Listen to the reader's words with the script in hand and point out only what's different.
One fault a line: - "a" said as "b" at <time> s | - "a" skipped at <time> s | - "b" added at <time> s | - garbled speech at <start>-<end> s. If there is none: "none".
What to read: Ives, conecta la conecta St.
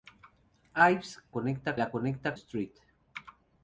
none